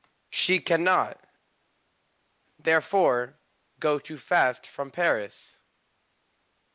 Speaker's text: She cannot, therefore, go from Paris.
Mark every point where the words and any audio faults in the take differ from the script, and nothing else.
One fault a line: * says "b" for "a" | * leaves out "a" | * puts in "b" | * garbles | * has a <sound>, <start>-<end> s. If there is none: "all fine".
* puts in "too fast"